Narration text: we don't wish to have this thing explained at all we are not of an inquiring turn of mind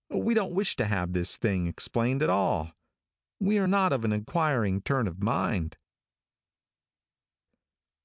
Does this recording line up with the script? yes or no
yes